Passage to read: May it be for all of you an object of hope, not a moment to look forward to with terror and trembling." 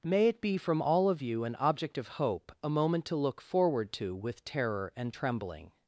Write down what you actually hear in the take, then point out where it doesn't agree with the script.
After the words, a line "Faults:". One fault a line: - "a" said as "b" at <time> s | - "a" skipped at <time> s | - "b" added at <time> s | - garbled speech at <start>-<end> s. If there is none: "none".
May it be from all of you an object of hope, a moment to look forward to with terror and trembling."
Faults:
- "for" said as "from" at 0.6 s
- "not" skipped at 2.5 s